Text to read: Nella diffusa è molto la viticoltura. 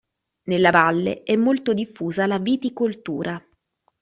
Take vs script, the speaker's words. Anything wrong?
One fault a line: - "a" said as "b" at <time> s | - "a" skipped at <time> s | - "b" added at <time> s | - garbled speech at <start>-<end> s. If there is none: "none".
- "diffusa" said as "valle" at 0.7 s
- "diffusa" added at 1.7 s